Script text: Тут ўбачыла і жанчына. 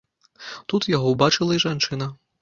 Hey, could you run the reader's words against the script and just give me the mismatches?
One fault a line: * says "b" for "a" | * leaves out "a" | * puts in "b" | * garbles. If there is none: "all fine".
* puts in "яго"